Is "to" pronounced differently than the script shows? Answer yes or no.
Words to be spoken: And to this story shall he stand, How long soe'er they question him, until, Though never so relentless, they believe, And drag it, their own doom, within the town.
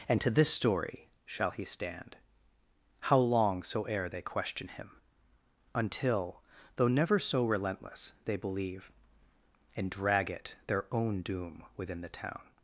no